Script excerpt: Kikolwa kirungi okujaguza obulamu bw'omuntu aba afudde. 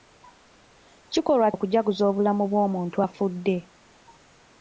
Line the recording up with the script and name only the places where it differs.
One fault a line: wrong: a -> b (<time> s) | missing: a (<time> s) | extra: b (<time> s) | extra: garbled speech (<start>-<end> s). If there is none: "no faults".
missing: kirungi (1.5 s)
missing: aba (3.0 s)